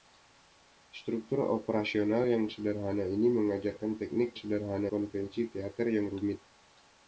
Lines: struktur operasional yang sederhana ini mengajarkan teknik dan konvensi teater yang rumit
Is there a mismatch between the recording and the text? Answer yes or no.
yes